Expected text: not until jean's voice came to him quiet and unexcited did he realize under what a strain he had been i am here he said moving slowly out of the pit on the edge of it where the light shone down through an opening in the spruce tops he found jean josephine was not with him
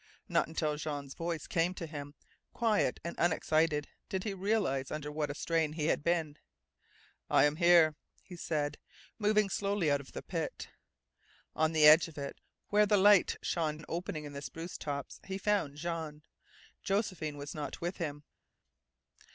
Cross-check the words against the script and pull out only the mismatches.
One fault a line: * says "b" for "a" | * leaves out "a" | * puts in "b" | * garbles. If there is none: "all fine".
* leaves out "down through"